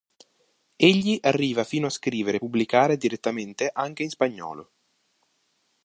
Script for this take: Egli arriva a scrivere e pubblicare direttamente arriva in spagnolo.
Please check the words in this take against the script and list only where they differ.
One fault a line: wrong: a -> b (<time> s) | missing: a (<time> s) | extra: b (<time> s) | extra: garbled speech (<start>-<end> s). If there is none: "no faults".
extra: fino (1.6 s)
wrong: arriva -> anche (3.7 s)